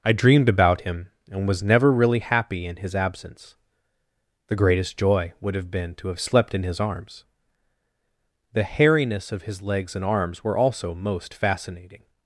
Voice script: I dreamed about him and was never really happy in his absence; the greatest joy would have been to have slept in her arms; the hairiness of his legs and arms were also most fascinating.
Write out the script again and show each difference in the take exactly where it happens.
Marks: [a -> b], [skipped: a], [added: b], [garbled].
I dreamed about him and was never really happy in his absence; the greatest joy would have been to have slept in [her -> his] arms; the hairiness of his legs and arms were also most fascinating.